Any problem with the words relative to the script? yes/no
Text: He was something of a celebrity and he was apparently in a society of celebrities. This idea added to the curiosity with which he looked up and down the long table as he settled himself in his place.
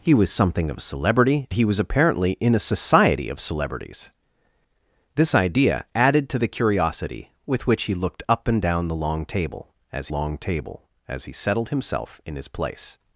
yes